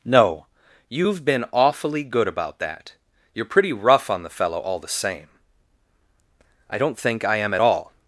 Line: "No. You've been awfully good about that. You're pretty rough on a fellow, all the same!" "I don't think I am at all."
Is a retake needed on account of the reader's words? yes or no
yes